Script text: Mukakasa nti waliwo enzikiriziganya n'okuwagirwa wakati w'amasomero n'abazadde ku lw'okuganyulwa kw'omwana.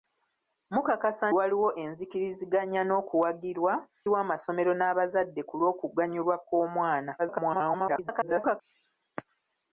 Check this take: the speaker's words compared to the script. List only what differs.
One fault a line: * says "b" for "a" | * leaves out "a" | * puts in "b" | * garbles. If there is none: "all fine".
* leaves out "nti"
* leaves out "wakati"
* garbles